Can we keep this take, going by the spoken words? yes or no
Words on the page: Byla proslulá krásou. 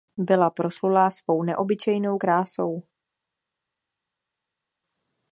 no